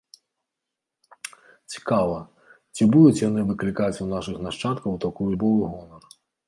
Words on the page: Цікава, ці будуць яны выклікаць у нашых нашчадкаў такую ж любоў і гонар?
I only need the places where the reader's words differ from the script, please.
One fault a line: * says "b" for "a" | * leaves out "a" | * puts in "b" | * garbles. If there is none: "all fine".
* leaves out "ж"